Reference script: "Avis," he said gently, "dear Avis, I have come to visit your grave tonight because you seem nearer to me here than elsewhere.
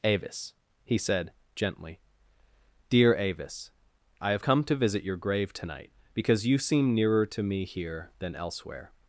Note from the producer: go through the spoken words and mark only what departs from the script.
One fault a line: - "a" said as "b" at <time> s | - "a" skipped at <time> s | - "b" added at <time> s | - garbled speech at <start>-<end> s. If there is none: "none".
none